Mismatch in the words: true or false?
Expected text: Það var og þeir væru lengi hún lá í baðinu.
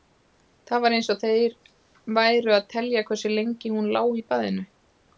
true